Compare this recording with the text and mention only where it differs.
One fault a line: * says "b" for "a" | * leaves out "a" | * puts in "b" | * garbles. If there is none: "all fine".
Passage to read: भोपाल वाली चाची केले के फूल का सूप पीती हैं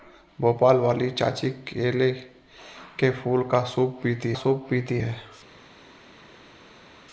* puts in "सूप पीती"